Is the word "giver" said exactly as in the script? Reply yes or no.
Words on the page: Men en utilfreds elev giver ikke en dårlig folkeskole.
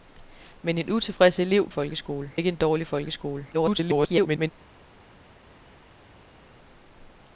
no